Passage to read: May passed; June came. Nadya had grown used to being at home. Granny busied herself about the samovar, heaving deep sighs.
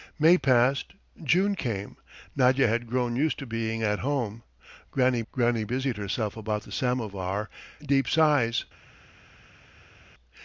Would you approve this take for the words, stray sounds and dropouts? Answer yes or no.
no